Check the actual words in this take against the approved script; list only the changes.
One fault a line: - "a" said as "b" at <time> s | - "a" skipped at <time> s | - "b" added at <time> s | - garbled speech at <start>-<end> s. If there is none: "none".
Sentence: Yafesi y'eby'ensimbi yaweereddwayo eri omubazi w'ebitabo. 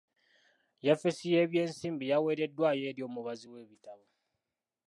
none